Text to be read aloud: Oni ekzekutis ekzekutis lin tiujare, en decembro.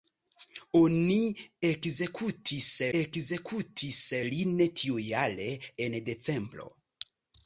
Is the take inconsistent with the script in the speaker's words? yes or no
no